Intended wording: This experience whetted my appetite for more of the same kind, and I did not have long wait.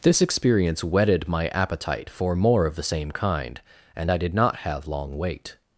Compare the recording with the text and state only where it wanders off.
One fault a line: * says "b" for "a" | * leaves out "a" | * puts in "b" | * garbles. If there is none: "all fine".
all fine